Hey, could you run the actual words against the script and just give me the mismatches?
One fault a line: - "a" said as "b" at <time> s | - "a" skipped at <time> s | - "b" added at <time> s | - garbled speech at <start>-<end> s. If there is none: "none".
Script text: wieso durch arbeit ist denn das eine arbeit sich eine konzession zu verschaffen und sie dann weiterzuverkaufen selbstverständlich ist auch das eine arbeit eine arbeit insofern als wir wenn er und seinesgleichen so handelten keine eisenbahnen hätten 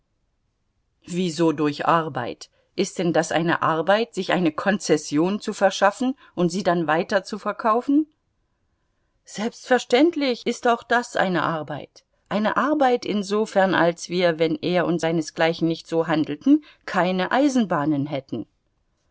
- "nicht" added at 15.7 s